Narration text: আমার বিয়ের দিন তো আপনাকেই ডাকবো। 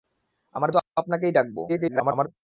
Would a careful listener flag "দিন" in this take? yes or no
yes